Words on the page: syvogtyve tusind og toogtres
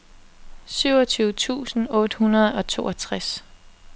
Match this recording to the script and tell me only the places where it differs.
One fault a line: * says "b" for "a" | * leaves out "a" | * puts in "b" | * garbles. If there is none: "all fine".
* puts in "otte hundrede"